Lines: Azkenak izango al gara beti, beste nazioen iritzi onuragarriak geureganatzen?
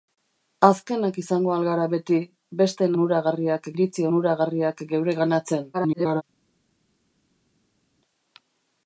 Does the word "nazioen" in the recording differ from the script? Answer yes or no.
yes